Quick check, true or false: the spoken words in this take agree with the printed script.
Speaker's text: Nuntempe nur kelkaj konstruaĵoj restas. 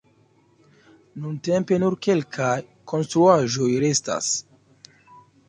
true